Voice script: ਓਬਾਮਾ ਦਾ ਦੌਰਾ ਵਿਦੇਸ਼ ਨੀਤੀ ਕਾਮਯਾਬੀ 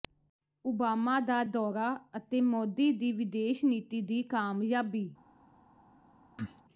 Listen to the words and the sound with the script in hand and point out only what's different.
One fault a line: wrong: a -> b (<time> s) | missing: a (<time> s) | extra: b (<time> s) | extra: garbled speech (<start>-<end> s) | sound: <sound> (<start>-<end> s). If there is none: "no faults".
extra: ਅਤੇ ਮੋਦੀ ਦੀ (2.2 s)
extra: ਦੀ (4.0 s)
sound: cough (6.4-6.6 s)